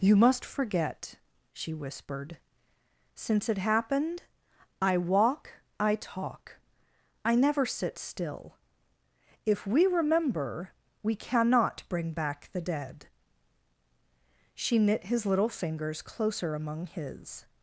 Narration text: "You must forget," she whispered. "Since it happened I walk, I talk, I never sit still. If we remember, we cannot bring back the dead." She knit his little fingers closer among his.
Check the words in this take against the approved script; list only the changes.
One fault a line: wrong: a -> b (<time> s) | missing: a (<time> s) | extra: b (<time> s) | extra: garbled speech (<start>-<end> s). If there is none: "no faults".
no faults